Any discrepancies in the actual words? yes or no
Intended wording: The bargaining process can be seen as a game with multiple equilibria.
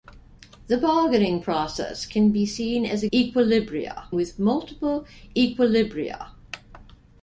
yes